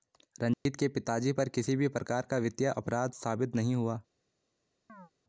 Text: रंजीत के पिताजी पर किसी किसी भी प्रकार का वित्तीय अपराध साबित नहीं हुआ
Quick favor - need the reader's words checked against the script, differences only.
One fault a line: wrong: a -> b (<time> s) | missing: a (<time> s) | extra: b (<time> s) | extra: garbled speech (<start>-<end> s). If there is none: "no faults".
missing: किसी (1.8 s)